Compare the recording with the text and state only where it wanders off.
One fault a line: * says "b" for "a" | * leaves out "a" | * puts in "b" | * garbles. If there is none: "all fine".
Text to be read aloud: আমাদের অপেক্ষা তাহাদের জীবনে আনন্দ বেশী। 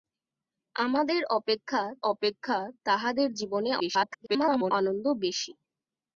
* puts in "অপেক্ষা"
* garbles